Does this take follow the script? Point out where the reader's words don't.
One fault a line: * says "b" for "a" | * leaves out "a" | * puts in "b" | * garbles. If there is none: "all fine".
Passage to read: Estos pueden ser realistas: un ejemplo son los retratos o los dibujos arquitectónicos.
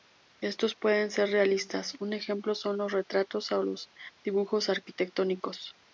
all fine